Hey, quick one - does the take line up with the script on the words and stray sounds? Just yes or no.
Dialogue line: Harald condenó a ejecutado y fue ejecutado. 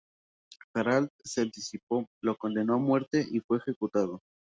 no